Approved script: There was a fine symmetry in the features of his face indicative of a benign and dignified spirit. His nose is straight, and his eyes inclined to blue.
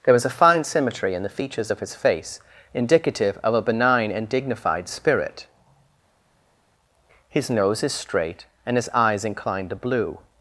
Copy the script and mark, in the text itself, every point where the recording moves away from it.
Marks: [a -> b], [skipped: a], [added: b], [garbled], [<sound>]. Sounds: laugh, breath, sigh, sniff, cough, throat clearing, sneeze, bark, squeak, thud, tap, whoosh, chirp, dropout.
There was a fine symmetry in the features of his face indicative of a benign and dignified spirit. His nose is straight, and his eyes inclined to blue.